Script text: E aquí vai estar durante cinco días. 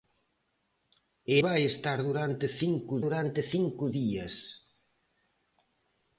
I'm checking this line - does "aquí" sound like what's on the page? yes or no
no